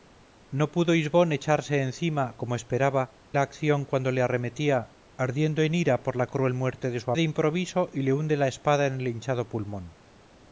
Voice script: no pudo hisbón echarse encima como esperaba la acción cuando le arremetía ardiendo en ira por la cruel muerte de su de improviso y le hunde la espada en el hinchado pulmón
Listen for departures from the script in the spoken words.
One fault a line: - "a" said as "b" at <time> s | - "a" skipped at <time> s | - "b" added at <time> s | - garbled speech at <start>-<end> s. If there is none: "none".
none